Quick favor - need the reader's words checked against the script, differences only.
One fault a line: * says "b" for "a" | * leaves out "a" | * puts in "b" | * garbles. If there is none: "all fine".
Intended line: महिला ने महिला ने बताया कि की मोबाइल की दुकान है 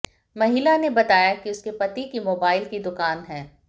* says "बताया कि उसके पति" for "महिला ने बताया कि"